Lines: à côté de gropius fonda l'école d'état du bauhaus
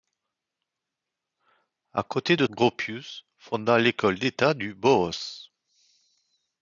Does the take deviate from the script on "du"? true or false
false